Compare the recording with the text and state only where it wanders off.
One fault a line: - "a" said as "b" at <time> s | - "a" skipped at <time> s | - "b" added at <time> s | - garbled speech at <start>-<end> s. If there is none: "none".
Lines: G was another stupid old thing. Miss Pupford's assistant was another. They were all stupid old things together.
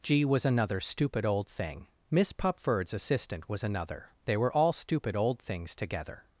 none